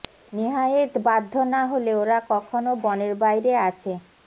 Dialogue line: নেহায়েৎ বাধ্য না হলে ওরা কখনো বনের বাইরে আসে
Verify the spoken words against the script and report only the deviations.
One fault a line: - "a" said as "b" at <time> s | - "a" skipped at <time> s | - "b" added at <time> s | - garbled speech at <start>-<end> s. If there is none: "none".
none